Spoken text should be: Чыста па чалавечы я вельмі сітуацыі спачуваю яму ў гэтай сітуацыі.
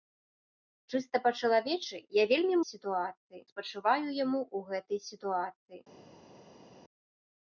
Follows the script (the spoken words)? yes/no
yes